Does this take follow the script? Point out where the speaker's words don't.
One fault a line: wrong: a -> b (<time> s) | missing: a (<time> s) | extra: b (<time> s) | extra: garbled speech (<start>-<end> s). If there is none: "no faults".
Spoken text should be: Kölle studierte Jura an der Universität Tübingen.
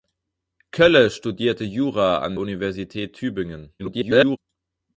missing: der (2.4 s)
extra: garbled speech (3.8-4.4 s)